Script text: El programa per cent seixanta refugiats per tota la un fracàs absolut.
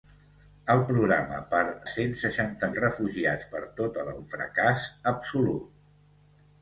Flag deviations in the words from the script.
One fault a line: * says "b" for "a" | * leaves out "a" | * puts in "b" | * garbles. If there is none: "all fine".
all fine